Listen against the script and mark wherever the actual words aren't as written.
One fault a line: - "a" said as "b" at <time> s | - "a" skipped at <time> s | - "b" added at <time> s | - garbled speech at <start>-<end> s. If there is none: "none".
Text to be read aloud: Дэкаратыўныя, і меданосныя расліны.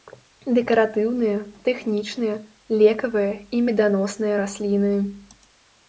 - "тэхнічныя лекавыя" added at 1.7 s